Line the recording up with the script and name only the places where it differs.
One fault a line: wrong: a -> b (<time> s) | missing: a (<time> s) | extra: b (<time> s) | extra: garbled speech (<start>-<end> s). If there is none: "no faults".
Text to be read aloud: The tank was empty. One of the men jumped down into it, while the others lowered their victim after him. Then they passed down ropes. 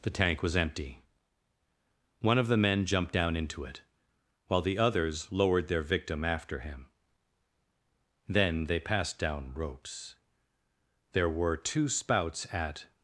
extra: There were two spouts at (11.1 s)